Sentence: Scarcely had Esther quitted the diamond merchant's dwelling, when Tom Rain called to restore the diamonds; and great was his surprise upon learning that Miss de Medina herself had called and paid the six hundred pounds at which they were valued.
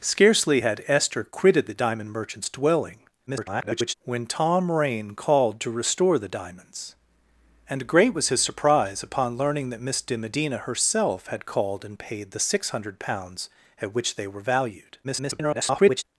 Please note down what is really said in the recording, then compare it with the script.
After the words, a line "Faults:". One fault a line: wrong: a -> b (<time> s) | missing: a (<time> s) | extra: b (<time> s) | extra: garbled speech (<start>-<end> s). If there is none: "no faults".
Scarcely had Esther quitted the diamond merchant's dwelling, [garbled] when Tom Rain called to restore the diamonds; and great was his surprise upon learning that Miss de Medina herself had called and paid the six hundred pounds at which they were valued. [garbled]
Faults:
extra: garbled speech (3.3-3.9 s)
extra: garbled speech (15.0-16.0 s)